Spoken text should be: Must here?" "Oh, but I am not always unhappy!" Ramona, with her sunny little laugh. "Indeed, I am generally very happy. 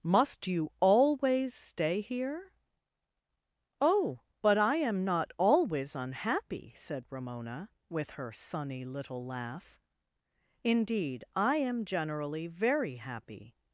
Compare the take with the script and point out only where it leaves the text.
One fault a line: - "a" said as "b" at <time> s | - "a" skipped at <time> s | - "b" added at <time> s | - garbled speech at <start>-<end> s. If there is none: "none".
- "you always stay" added at 0.5 s
- "said" added at 6.8 s